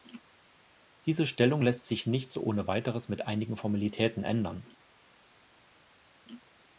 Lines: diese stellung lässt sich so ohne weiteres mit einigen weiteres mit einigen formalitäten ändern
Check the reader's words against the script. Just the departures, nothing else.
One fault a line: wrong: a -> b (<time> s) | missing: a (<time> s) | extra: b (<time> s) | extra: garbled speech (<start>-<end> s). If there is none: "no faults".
extra: nicht (2.1 s)
missing: weiteres mit einigen (3.6 s)